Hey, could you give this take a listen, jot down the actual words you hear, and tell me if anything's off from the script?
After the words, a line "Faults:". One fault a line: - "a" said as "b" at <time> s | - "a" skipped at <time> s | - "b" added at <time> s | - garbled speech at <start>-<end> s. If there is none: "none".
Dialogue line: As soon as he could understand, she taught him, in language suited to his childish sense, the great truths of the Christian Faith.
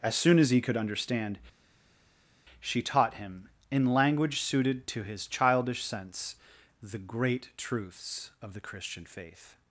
As soon as he could understand, she taught him, in language suited to his childish sense, the great truths of the Christian Faith.
Faults:
none